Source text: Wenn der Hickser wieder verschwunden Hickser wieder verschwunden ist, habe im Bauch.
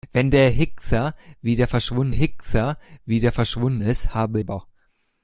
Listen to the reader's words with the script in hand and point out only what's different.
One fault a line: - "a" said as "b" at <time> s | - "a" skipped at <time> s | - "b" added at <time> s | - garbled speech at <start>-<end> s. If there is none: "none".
none